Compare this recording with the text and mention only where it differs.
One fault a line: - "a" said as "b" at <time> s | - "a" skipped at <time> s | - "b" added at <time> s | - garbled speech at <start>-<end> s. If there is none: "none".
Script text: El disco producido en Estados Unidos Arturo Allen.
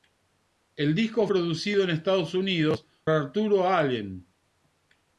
none